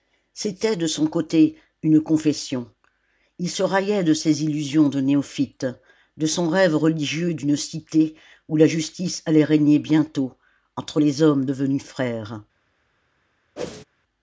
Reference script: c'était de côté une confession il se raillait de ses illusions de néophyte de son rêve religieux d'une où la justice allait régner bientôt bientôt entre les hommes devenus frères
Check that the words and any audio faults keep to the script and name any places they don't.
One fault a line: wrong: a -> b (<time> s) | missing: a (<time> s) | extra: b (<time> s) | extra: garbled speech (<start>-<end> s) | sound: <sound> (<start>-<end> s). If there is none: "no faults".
extra: son (0.9 s)
extra: cité (7.5 s)
missing: bientôt (10.3 s)
sound: whoosh (13.6-13.8 s)